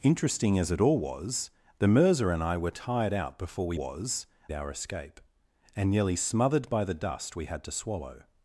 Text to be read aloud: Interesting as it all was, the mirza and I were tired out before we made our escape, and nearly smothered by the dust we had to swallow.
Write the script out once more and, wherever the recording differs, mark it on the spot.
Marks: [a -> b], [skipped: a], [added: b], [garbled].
Interesting as it all was, the mirza and I were tired out before we [made -> was] our escape, and nearly smothered by the dust we had to swallow.